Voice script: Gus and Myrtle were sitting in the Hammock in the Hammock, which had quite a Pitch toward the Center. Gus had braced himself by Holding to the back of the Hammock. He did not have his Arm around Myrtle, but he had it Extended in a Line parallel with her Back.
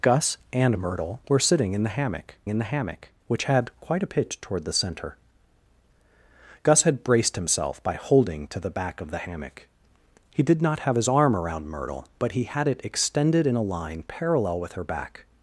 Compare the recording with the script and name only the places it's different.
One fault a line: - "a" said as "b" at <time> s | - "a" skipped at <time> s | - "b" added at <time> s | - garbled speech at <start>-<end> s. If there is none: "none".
none